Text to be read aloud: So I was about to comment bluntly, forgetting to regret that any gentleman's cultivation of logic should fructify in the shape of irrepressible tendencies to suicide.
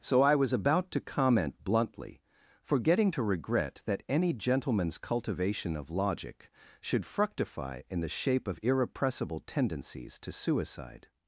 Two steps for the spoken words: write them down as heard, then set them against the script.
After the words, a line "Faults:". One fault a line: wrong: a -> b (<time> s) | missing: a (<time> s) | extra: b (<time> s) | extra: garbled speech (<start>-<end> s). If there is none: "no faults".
So I was about to comment bluntly, forgetting to regret that any gentleman's cultivation of logic should fructify in the shape of irrepressible tendencies to suicide.
Faults:
no faults